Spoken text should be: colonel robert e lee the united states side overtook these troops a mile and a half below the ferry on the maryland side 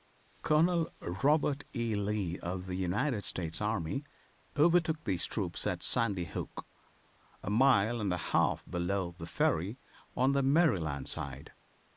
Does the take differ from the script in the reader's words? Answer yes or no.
yes